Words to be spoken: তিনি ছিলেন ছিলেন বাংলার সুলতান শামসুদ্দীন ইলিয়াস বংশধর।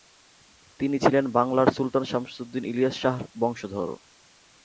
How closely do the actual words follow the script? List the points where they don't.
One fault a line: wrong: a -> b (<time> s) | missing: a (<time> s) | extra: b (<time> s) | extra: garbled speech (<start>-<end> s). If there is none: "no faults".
missing: ছিলেন (1.2 s)
extra: শাহর (3.0 s)